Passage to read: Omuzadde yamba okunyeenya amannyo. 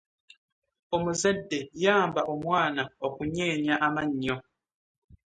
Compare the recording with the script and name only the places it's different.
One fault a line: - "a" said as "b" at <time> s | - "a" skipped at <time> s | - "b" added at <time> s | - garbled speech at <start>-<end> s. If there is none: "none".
- "omwana" added at 2.3 s